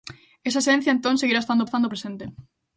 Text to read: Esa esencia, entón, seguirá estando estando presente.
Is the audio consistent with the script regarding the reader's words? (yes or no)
yes